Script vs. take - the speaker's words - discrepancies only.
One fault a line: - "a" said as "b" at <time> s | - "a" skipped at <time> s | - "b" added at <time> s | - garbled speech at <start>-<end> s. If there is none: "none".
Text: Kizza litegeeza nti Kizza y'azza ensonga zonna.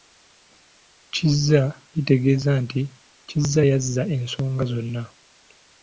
none